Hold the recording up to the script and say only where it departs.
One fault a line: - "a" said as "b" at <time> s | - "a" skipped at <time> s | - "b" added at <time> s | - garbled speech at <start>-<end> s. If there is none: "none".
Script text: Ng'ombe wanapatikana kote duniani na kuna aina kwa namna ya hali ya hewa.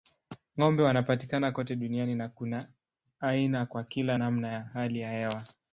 - "kila" added at 3.8 s